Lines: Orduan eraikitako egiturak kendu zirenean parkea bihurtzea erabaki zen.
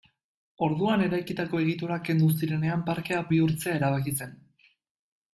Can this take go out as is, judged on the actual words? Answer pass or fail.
pass